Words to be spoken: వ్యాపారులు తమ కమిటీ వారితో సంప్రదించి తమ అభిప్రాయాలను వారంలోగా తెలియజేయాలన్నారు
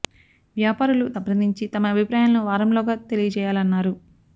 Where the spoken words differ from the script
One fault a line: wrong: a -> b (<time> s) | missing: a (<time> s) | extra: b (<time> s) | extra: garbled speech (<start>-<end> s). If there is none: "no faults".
missing: తమ కమిటీ వారితో (1.1 s)